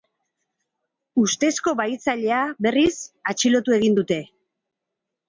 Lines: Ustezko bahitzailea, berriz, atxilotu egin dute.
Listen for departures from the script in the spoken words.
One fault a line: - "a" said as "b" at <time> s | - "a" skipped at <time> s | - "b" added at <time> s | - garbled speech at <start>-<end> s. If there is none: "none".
none